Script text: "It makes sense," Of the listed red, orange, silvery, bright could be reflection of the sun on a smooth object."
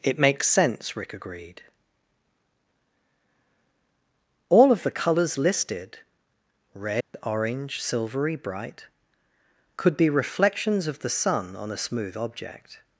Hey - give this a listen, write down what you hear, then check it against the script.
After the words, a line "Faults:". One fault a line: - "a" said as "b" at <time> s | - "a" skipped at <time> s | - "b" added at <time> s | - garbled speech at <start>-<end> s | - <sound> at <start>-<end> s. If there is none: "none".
"It makes sense," Rick agreed. "All of the colors listed red, orange, silvery, bright could be reflections of the sun on a smooth object."
Faults:
- "Rick agreed All" added at 1.0 s
- "colors" added at 4.9 s
- dropout at 7.0-7.1 s
- "reflection" said as "reflections" at 10.1 s